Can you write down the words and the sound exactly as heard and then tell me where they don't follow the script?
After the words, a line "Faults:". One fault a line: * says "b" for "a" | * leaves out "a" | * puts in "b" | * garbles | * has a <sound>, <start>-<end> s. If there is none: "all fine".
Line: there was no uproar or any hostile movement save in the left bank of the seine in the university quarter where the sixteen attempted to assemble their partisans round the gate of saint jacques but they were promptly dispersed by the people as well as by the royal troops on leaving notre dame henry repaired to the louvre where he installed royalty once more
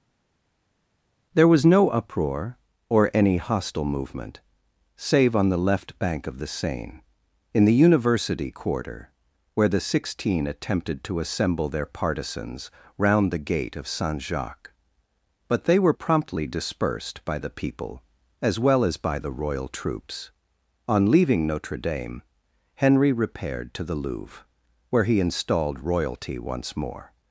there was no uproar or any hostile movement save on the left bank of the seine in the university quarter where the sixteen attempted to assemble their partisans round the gate of saint jacques but they were promptly dispersed by the people as well as by the royal troops on leaving notre dame henry repaired to the louvre where he installed royalty once more
Faults:
* says "on" for "in"